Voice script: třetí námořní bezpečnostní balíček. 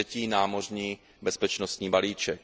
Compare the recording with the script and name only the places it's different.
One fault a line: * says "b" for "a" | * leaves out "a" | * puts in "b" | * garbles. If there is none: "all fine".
all fine